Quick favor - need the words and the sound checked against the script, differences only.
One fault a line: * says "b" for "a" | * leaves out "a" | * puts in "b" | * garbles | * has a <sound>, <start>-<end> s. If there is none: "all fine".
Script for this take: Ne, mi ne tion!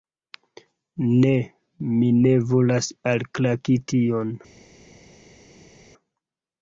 * puts in "volas alklaki"